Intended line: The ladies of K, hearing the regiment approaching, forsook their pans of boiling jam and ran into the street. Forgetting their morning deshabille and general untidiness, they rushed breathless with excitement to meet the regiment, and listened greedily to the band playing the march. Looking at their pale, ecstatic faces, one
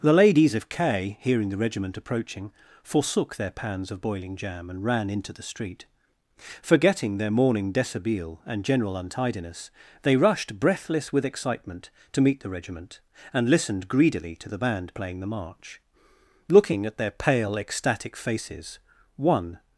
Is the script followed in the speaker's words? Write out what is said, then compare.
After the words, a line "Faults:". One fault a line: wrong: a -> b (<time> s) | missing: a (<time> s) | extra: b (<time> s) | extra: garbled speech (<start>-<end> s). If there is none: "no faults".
The ladies of K, hearing the regiment approaching, forsook their pans of boiling jam and ran into the street. Forgetting their morning deshabille and general untidiness, they rushed breathless with excitement to meet the regiment, and listened greedily to the band playing the march. Looking at their pale, ecstatic faces, one
Faults:
no faults